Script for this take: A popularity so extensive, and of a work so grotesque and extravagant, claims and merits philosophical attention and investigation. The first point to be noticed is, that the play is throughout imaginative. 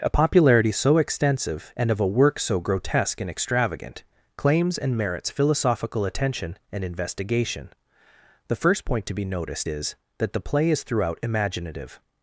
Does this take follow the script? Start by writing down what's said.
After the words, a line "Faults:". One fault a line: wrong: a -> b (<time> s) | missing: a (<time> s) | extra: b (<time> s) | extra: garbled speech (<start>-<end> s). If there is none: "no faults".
A popularity so extensive, and of a work so grotesque and extravagant, claims and merits philosophical attention and investigation. The first point to be noticed is, that the play is throughout imaginative.
Faults:
no faults